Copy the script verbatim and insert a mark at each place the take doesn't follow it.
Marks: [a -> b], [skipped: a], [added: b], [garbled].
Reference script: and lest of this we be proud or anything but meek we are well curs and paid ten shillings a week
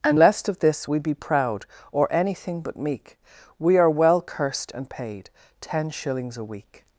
and lest of this we be proud or anything but meek we are well [curs -> cursed] and paid ten shillings a week